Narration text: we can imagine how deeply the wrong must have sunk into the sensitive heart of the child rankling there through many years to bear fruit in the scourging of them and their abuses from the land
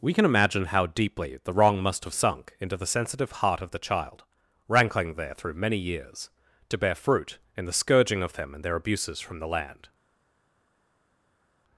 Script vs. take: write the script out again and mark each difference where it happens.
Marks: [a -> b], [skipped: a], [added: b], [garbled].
we can imagine how deeply the wrong must have sunk into the sensitive heart of the child rankling there through many years to bear fruit in the scourging of them and their abuses from the land